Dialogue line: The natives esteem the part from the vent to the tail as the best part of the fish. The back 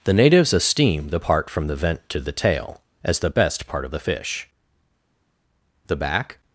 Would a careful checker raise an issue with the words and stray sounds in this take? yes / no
no